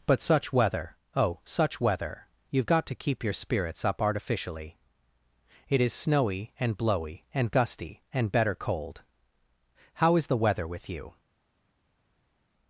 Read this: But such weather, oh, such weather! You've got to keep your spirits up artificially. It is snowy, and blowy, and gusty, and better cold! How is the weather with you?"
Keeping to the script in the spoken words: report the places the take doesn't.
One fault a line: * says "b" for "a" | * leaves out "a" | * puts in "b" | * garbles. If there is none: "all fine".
all fine